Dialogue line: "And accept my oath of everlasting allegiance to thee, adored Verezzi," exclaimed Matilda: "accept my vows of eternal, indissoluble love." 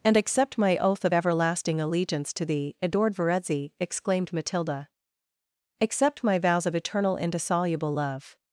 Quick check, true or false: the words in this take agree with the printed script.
true